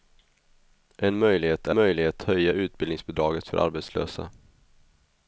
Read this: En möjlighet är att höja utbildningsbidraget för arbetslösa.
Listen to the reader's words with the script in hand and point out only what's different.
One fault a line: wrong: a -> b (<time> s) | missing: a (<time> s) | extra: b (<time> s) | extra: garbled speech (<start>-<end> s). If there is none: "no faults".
wrong: att -> möjlighet (1.7 s)